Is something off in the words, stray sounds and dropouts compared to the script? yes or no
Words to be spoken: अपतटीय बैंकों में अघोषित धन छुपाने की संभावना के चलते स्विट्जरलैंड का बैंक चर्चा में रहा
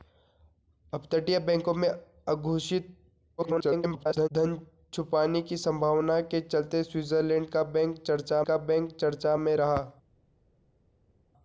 yes